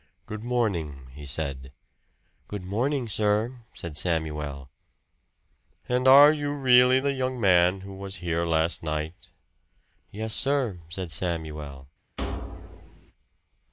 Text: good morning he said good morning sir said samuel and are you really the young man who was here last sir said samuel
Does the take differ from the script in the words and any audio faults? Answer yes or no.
yes